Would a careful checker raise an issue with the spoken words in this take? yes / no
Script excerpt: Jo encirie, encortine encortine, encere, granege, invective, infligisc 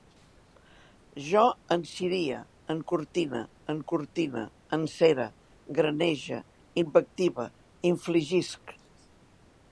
no